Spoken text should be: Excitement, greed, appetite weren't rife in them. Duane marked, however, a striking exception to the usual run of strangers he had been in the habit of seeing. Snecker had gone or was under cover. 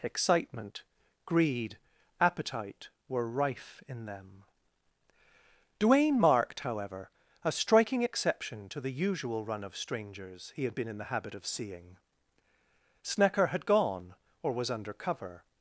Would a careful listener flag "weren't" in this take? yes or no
yes